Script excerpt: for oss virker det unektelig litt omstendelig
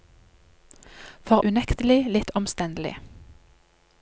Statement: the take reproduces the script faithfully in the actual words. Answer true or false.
false